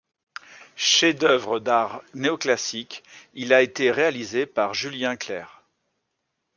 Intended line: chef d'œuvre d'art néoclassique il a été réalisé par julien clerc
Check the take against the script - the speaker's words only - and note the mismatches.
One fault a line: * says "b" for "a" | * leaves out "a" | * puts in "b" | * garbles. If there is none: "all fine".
all fine